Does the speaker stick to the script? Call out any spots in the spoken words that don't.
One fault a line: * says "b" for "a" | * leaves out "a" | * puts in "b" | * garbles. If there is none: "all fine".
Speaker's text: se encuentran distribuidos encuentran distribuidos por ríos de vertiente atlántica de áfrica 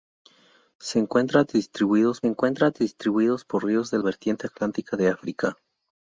all fine